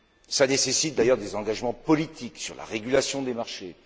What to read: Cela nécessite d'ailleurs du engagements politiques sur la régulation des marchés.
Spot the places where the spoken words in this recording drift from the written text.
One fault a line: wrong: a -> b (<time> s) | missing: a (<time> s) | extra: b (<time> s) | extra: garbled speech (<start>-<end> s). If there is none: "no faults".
wrong: du -> des (1.2 s)